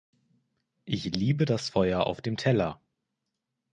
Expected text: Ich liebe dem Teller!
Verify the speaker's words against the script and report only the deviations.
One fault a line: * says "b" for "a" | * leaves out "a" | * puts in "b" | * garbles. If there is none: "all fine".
* puts in "das Feuer auf"